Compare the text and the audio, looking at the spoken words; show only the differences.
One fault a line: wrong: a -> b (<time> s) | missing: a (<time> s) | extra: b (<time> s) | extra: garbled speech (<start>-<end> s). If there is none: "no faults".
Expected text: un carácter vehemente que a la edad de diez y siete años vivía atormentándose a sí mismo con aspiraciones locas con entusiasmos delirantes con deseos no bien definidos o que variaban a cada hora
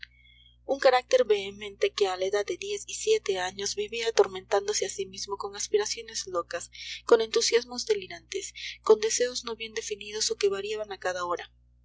no faults